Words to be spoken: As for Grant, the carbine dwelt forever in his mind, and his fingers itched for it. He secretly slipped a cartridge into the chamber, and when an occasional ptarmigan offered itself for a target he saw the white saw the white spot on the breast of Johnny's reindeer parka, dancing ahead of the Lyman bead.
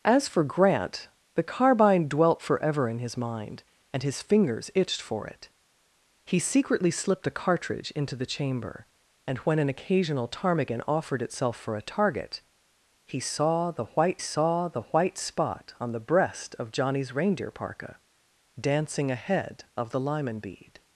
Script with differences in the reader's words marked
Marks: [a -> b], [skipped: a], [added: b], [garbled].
As for Grant, the carbine dwelt forever in his mind, and his fingers itched for it. He secretly slipped a cartridge into the chamber, and when an occasional ptarmigan offered itself for a target he saw the white saw the white spot on the breast of Johnny's reindeer parka, dancing ahead of the Lyman bead.